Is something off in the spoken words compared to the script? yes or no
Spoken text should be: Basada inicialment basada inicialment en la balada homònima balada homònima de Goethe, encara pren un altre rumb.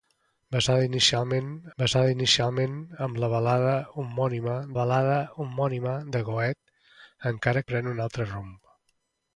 no